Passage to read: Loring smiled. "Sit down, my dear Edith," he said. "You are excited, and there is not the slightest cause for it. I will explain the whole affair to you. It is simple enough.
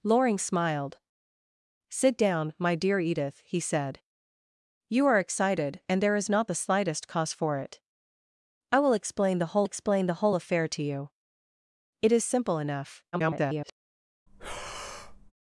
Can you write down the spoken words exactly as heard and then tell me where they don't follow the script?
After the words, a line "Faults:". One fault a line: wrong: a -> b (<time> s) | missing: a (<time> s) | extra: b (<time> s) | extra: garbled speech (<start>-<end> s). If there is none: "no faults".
Loring smiled. "Sit down, my dear Edith," he said. "You are excited, and there is not the slightest cause for it. I will explain the whole explain the whole affair to you. It is simple enough. [garbled]
Faults:
extra: explain the whole (9.6 s)
extra: garbled speech (13.1-13.7 s)